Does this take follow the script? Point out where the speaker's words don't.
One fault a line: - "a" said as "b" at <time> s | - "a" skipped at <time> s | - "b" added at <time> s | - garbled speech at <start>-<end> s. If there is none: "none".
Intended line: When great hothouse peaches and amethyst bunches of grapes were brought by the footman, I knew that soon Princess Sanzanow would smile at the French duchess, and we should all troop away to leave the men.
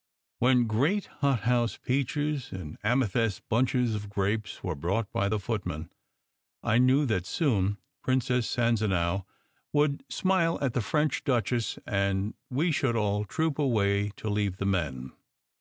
none